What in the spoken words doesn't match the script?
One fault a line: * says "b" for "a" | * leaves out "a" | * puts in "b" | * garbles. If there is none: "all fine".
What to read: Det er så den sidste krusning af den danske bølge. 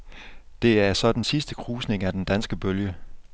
all fine